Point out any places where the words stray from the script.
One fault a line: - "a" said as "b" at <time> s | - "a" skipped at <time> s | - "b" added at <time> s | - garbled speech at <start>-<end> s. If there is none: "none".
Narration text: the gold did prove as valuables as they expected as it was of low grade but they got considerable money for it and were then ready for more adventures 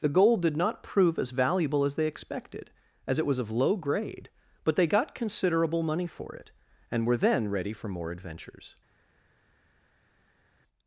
- "not" added at 0.6 s
- "valuables" said as "valuable" at 1.3 s